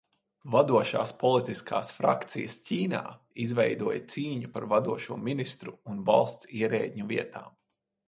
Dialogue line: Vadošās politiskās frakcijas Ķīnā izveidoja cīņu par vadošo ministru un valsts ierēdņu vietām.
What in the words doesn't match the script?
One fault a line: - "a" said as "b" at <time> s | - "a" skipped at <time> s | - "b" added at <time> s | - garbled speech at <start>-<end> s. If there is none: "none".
none